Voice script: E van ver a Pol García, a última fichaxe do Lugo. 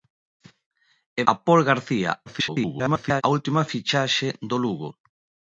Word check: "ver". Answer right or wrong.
wrong